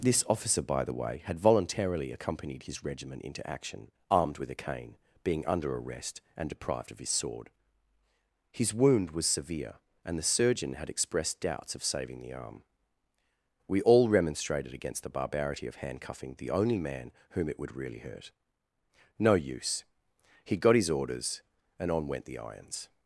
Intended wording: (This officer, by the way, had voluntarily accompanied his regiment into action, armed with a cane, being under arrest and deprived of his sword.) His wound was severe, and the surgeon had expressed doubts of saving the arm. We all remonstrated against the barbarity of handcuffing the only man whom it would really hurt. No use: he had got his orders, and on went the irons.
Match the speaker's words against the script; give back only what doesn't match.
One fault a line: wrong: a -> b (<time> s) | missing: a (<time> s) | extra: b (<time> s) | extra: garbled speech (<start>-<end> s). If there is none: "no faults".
missing: had (20.6 s)